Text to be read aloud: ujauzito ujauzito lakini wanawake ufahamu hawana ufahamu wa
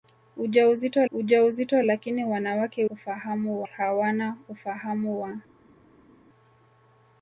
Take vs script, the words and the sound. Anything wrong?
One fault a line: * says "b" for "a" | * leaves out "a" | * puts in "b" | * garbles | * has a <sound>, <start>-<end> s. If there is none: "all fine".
all fine